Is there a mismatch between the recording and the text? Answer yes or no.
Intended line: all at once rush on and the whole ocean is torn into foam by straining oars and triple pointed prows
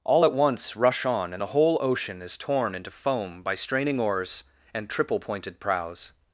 no